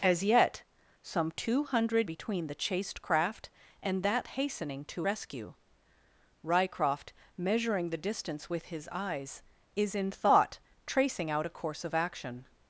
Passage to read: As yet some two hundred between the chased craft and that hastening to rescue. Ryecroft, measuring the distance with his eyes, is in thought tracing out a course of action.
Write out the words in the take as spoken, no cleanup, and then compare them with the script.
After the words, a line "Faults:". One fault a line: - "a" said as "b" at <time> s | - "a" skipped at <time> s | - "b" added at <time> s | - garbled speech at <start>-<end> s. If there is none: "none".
As yet some two hundred between the chased craft and that hastening to rescue. Ryecroft, measuring the distance with his eyes, is in thought tracing out a course of action.
Faults:
none